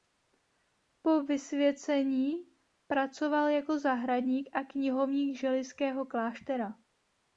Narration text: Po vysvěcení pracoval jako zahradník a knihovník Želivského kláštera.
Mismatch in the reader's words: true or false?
false